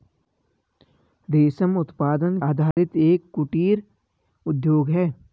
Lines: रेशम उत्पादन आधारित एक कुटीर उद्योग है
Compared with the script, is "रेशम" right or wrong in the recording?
right